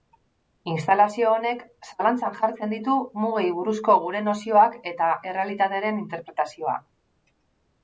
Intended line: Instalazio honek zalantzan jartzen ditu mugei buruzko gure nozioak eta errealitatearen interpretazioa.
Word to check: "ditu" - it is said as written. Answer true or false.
true